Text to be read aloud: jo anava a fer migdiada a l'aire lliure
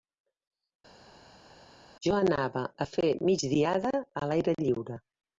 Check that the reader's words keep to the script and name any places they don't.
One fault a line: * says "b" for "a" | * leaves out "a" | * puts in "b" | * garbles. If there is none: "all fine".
all fine